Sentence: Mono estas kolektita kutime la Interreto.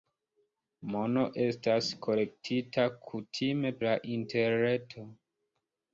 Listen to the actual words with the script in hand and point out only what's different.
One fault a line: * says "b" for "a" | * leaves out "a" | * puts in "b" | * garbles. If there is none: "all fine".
all fine